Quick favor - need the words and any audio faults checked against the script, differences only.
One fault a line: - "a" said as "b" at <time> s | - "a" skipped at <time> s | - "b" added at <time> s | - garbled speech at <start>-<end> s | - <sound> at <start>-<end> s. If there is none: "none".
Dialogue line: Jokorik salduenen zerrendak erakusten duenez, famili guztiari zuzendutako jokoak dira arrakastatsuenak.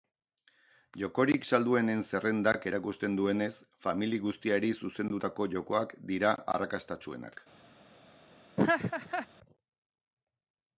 - laugh at 8.6-9.3 s